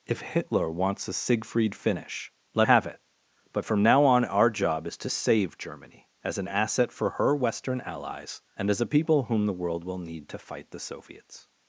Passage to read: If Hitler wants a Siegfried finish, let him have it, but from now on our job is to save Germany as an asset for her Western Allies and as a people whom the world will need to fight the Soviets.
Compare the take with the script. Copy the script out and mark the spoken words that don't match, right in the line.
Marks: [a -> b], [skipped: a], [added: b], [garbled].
If Hitler wants a Siegfried finish, let [skipped: him] have it, but from now on our job is to save Germany as an asset for her Western Allies and as a people whom the world will need to fight the Soviets.